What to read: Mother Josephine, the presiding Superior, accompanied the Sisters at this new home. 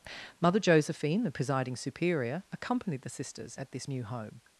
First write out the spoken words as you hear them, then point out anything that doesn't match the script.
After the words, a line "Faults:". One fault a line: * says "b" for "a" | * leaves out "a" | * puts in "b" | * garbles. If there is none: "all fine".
Mother Josephine, the presiding Superior, accompanied the Sisters at this new home.
Faults:
all fine